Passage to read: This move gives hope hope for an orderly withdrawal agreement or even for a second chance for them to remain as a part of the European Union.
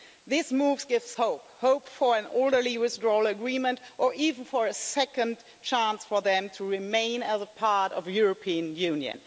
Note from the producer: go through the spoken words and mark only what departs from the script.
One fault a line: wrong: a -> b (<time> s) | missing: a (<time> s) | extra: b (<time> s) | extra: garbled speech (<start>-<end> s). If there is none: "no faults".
no faults